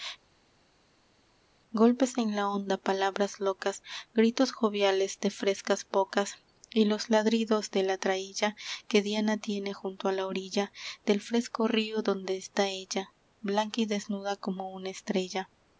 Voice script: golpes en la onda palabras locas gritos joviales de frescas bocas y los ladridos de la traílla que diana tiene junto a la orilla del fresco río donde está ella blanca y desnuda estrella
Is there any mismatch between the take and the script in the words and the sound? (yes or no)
yes